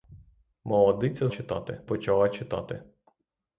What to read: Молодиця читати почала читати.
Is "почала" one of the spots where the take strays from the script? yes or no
no